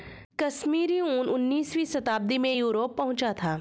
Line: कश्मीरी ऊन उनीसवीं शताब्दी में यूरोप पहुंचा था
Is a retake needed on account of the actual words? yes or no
no